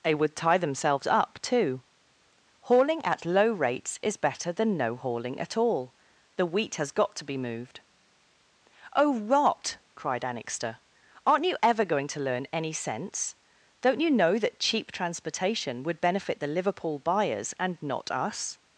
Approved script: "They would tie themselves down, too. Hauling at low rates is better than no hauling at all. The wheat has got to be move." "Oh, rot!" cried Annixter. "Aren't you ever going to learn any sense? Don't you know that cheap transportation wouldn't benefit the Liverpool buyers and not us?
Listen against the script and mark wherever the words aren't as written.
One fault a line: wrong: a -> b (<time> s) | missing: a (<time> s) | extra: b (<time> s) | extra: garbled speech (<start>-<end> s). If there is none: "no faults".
wrong: down -> up (1.1 s)
wrong: move -> moved (7.4 s)
wrong: wouldn't -> would (15.8 s)